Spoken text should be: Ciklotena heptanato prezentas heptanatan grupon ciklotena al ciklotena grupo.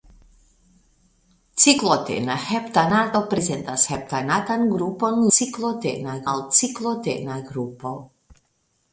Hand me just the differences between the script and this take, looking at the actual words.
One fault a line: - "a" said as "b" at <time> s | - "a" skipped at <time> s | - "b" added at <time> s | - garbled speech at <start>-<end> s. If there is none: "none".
none